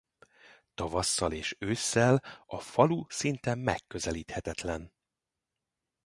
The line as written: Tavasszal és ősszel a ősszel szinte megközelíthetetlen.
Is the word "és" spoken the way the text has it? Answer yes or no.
yes